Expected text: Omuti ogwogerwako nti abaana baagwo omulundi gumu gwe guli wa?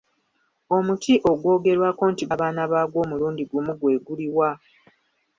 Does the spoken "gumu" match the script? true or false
true